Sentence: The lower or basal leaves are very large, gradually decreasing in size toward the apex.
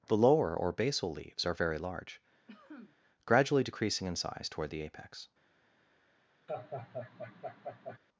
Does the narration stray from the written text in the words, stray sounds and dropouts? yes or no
yes